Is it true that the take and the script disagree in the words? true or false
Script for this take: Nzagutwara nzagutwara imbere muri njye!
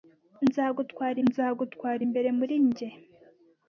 false